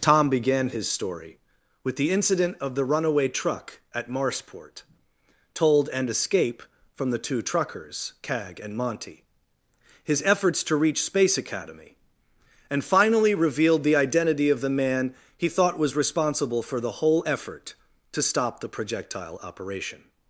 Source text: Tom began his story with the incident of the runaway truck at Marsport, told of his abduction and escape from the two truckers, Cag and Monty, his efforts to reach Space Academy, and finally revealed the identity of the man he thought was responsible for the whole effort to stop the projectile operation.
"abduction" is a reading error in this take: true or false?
true